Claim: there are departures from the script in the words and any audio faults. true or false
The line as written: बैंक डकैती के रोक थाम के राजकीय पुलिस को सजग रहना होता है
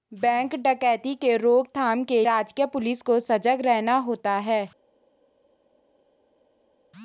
false